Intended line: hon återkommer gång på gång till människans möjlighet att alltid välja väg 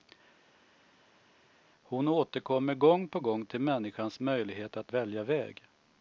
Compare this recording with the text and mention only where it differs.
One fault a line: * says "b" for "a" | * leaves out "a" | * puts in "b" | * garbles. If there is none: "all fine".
* leaves out "alltid"